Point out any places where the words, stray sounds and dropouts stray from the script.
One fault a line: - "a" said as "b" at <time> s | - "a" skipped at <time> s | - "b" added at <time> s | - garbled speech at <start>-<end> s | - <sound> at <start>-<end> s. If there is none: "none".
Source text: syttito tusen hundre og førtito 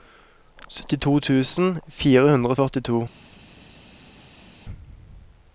- "fire" added at 2.0 s